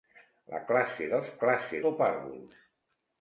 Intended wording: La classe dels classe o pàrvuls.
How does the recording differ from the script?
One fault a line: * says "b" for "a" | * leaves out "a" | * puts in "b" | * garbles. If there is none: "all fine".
all fine